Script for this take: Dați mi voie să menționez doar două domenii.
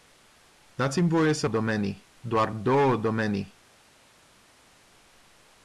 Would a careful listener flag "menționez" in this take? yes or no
yes